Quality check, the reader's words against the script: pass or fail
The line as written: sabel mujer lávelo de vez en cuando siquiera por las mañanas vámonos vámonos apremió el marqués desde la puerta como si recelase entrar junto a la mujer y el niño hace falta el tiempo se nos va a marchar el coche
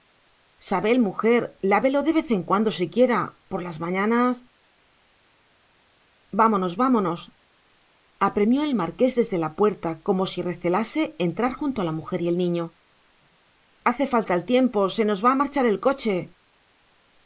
pass